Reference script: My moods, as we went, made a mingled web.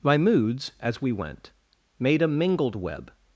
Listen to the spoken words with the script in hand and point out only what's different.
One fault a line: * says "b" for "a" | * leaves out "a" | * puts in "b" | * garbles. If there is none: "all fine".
all fine